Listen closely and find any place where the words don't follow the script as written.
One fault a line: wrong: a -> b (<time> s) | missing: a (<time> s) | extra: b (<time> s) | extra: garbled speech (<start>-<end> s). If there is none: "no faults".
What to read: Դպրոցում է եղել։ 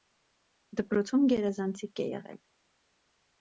extra: գերազանցիկ (1.3 s)